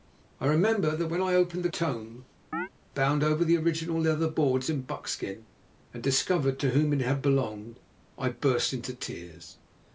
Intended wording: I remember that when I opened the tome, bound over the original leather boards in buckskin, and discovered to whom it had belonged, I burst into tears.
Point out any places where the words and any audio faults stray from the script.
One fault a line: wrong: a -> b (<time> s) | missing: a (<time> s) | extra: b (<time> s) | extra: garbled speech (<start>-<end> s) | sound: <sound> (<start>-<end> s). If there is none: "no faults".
sound: chirp (2.5-2.7 s)